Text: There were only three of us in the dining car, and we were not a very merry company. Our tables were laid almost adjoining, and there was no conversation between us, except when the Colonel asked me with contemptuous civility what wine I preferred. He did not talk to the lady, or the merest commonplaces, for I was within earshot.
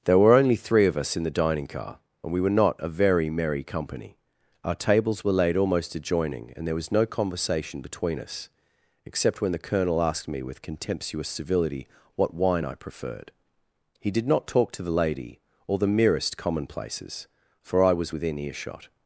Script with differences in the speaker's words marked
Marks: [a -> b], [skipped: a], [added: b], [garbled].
There were only three of us in the dining car, and we were not a very merry company. Our tables were laid almost adjoining, and there was no conversation between us, except when the Colonel asked me with contemptuous civility what wine I preferred. He did not talk to the lady, or the merest commonplaces, for I was within earshot.